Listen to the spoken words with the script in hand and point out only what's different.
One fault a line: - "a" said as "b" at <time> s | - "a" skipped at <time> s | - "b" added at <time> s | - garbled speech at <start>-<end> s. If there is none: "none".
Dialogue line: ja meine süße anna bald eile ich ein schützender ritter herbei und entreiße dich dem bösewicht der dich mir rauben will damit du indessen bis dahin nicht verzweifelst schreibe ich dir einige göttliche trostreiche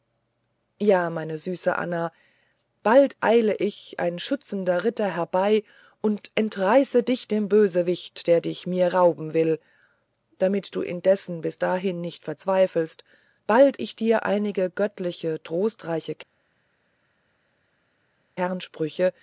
- "schreibe" said as "bald" at 13.5 s